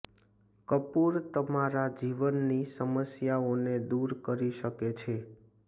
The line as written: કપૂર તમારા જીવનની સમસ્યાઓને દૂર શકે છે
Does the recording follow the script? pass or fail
fail